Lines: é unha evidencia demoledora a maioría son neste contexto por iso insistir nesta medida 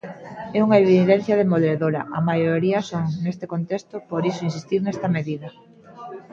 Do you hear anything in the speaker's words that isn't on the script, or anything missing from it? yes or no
no